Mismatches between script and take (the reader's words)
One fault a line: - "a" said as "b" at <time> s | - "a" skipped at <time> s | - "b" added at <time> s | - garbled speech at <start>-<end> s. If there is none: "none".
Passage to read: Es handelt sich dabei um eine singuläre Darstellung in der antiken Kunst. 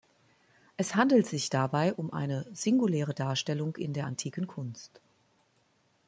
none